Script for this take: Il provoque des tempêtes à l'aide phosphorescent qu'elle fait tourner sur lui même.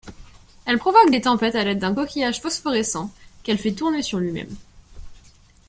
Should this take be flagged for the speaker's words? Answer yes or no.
yes